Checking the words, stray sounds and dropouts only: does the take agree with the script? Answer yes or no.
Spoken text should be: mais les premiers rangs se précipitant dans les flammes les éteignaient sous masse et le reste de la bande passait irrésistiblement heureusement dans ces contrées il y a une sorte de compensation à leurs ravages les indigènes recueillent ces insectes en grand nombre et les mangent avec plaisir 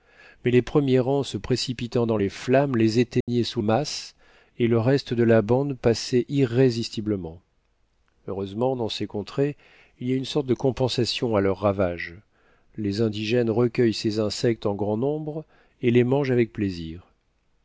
no